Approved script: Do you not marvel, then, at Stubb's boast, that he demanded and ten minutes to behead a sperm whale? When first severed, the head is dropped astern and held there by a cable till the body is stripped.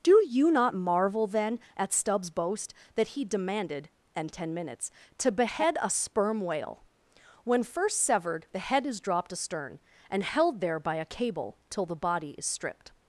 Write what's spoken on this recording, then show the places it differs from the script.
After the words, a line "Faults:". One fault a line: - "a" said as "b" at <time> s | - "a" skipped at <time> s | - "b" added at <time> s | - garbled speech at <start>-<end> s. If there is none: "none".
Do you not marvel, then, at Stubb's boast, that he demanded and ten minutes to behead a sperm whale? When first severed, the head is dropped astern and held there by a cable till the body is stripped.
Faults:
none